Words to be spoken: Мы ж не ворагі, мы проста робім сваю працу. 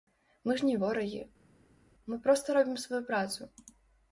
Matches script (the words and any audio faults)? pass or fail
pass